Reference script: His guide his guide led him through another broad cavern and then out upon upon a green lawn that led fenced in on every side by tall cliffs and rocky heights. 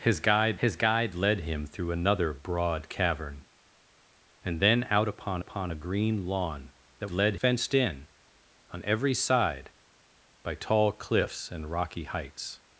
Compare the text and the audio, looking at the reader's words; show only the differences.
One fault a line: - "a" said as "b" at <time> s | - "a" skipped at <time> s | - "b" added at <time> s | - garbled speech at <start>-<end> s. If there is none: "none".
none